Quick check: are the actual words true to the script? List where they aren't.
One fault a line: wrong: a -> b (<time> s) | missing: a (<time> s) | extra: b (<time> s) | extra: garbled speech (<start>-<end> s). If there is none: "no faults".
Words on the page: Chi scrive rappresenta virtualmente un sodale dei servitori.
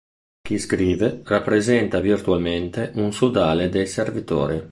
no faults